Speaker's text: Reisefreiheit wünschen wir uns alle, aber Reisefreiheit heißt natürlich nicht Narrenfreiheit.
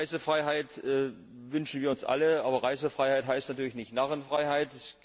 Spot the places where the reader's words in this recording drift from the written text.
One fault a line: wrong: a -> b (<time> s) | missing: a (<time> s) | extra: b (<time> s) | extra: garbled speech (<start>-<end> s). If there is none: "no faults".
no faults